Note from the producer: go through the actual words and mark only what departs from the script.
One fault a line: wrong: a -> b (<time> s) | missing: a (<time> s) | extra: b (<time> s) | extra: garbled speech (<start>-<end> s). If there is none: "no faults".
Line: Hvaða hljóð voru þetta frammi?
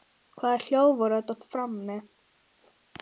no faults